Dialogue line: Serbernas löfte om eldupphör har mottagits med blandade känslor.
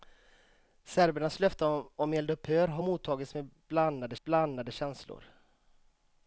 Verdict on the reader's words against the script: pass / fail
fail